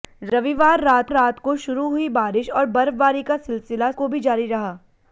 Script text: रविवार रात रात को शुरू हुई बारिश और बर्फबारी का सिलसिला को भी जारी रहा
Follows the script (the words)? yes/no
yes